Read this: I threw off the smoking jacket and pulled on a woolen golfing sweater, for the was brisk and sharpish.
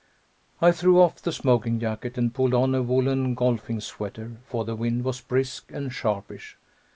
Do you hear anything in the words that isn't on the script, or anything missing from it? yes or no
yes